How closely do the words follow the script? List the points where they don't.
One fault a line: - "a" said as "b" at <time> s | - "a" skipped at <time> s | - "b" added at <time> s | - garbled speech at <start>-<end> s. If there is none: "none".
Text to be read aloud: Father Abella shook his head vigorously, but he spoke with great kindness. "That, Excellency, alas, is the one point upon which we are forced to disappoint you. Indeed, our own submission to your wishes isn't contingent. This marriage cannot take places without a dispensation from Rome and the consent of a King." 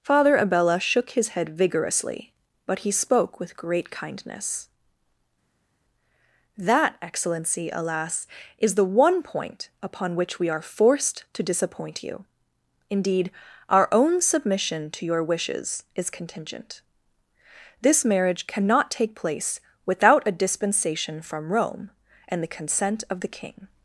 - "isn't" said as "is" at 15.9 s
- "places" said as "place" at 19.1 s
- "a" said as "the" at 23.2 s